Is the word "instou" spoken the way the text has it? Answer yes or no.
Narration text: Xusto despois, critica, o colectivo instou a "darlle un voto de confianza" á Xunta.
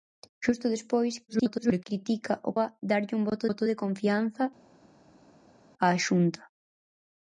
no